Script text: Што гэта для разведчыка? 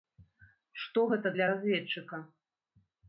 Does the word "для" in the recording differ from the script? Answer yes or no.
no